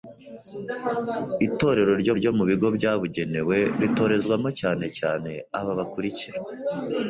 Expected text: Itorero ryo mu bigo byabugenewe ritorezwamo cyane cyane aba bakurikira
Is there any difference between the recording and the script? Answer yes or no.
yes